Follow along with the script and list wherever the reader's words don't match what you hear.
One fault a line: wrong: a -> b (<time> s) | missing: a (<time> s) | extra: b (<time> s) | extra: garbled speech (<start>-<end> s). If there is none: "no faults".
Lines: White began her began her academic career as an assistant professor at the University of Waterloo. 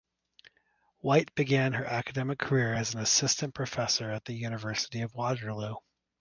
missing: began her (1.9 s)